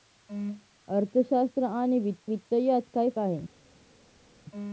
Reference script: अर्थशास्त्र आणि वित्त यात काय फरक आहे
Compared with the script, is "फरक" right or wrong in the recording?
wrong